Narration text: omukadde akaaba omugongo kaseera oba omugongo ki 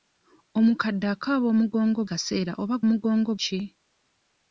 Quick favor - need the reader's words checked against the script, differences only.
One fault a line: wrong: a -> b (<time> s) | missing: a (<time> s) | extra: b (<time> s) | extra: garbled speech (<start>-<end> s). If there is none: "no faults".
no faults